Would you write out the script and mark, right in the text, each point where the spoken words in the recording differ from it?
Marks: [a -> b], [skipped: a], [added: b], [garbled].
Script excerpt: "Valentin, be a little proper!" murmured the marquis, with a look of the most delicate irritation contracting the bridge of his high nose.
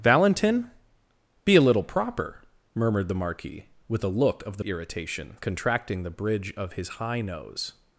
"Valentin, be a little proper!" murmured the marquis, with a look of the [skipped: most delicate] irritation contracting the bridge of his high nose.